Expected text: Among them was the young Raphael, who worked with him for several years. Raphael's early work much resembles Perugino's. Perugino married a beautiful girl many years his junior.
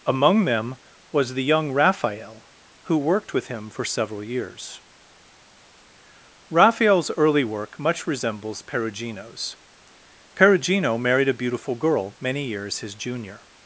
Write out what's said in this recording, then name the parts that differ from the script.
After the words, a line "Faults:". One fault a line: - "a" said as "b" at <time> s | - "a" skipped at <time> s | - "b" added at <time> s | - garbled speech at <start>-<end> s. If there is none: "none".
Among them was the young Raphael, who worked with him for several years. Raphael's early work much resembles Perugino's. Perugino married a beautiful girl many years his junior.
Faults:
none